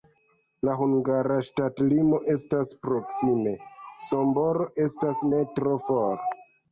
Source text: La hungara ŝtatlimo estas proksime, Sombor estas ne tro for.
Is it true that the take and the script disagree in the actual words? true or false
false